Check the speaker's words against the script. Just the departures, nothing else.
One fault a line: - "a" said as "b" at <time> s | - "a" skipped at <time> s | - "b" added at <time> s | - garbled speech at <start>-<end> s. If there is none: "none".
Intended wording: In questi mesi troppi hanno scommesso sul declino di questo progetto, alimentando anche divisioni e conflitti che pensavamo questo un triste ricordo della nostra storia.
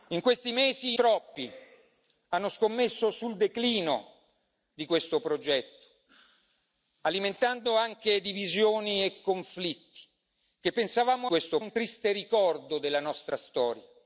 none